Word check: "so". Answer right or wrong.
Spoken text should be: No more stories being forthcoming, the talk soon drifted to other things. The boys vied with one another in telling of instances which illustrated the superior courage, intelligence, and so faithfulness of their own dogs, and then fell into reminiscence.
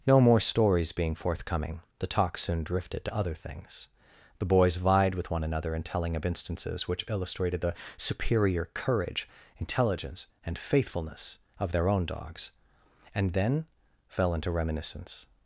wrong